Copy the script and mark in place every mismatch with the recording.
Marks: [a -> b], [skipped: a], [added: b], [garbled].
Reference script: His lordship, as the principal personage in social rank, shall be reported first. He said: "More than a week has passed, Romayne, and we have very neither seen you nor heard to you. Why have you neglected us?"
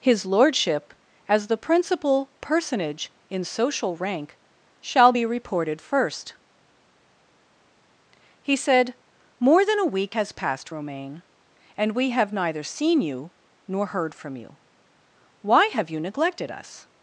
His lordship, as the principal personage in social rank, shall be reported first. He said: "More than a week has passed, Romayne, and we have [skipped: very] neither seen you nor heard [to -> from] you. Why have you neglected us?"